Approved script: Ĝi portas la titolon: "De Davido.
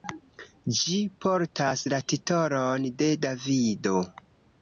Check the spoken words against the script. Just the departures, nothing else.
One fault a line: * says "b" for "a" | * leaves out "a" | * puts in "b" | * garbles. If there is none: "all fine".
all fine